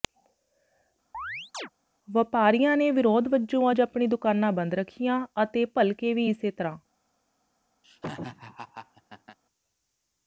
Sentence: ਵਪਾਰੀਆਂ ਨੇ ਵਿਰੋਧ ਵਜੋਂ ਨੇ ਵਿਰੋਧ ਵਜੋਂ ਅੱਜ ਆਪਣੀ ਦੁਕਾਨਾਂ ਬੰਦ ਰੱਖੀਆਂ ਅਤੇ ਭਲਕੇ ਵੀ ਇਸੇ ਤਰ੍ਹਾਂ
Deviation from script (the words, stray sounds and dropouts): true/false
true